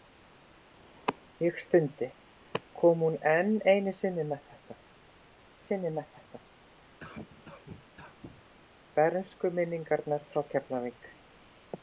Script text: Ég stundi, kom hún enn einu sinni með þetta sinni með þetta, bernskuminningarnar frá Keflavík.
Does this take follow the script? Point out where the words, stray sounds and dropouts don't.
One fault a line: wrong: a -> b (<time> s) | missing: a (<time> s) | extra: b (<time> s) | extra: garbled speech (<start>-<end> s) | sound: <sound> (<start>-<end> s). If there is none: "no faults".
sound: cough (7.0-8.5 s)